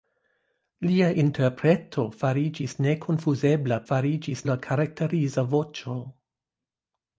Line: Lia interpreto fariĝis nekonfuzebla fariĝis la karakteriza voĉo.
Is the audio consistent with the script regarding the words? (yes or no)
yes